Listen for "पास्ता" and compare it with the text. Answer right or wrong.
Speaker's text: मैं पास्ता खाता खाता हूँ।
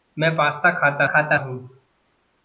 right